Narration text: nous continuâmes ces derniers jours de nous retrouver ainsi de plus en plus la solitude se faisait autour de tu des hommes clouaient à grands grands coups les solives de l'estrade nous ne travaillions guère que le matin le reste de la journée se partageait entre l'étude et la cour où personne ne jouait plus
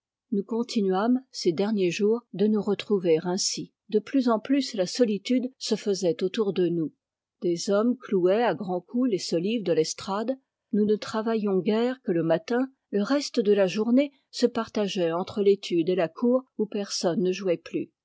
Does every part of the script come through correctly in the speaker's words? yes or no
no